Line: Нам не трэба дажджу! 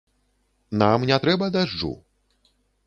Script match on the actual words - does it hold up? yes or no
yes